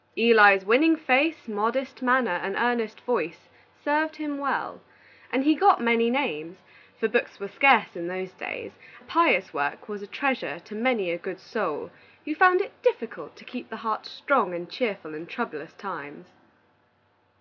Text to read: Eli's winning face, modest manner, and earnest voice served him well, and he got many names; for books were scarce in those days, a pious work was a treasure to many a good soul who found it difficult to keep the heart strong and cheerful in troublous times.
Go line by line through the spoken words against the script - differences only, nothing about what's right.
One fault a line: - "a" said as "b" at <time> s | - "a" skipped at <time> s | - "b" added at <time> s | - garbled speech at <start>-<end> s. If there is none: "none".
none